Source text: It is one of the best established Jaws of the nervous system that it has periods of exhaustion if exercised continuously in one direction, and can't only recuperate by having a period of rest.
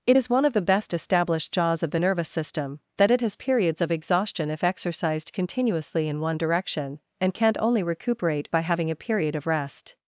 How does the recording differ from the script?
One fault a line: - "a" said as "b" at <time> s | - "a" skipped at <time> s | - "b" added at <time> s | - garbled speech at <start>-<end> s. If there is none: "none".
none